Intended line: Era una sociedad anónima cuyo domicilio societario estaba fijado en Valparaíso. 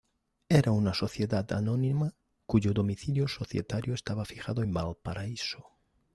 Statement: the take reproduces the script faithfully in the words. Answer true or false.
true